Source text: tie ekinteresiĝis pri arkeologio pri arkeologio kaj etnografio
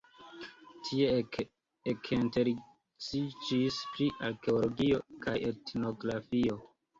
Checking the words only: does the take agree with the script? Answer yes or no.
no